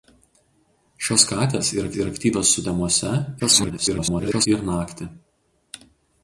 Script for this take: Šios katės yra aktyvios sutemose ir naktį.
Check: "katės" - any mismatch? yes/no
no